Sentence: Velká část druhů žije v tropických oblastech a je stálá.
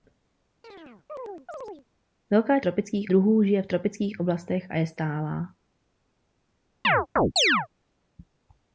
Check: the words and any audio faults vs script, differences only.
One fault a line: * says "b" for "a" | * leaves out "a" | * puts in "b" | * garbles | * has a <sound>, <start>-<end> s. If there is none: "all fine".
* has a chirp, 0.6-1.8 s
* says "tropických" for "část"
* has a chirp, 6.8-7.7 s